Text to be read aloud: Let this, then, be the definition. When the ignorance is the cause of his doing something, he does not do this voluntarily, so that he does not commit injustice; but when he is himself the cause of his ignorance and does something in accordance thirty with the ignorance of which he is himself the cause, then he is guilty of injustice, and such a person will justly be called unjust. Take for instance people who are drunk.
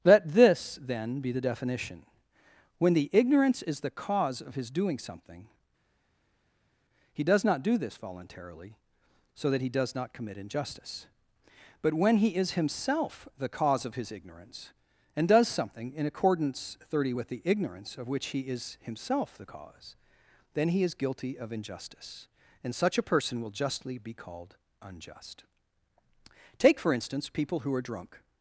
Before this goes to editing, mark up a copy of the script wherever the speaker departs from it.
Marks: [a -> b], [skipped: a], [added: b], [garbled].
Let this, then, be the definition. When the ignorance is the cause of his doing something, he does not do this voluntarily, so that he does not commit injustice; but when he is himself the cause of his ignorance and does something in accordance thirty with the ignorance of which he is himself the cause, then he is guilty of injustice, and such a person will justly be called unjust. Take for instance people who are drunk.